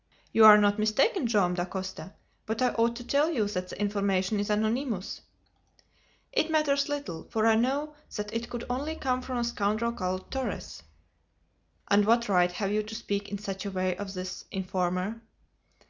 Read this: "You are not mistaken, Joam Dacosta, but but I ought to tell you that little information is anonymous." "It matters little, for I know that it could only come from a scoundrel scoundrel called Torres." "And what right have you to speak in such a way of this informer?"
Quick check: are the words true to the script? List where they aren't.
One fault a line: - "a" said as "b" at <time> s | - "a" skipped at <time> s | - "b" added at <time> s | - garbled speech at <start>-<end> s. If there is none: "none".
- "but" skipped at 2.6 s
- "little" said as "the" at 3.7 s
- "scoundrel" skipped at 9.9 s